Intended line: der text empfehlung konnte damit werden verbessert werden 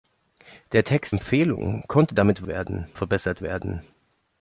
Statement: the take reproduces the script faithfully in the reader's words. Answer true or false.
true